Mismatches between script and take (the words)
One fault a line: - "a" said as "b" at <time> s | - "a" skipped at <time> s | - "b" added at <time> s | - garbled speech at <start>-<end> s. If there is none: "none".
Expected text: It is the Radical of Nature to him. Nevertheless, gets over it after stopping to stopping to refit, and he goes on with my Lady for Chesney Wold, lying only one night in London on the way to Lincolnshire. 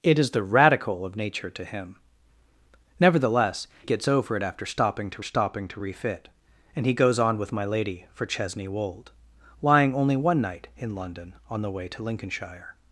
none